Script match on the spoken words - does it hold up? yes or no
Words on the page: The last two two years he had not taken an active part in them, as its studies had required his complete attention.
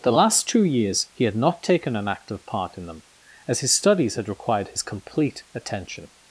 no